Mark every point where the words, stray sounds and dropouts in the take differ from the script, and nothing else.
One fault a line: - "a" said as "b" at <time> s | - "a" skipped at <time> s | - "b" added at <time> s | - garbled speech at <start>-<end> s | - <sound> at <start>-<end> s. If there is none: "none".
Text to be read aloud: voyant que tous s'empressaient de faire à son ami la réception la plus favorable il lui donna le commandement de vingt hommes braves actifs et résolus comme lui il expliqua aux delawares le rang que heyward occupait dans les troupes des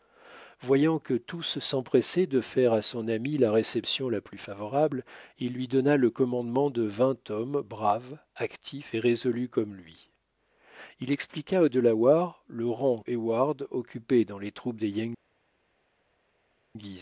- "que" skipped at 13.0 s